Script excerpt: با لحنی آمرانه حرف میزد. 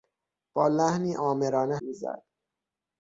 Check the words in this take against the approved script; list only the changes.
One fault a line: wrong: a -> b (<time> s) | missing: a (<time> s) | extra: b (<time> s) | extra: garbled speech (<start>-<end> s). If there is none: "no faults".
missing: حرف (1.8 s)